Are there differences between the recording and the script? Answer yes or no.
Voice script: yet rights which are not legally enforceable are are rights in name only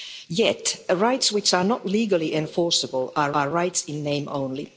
no